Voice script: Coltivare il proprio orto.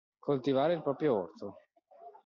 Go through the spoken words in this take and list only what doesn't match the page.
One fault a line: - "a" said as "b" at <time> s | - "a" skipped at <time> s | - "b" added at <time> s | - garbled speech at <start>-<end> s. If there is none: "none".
none